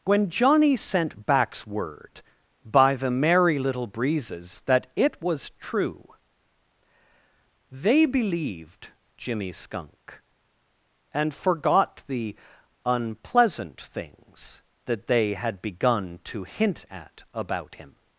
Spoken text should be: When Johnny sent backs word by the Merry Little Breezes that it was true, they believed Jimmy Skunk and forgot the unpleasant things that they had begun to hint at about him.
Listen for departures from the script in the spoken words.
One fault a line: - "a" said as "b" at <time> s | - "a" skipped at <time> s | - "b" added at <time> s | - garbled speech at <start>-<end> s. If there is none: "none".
none